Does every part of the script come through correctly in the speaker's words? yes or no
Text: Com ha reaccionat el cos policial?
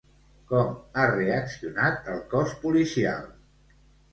yes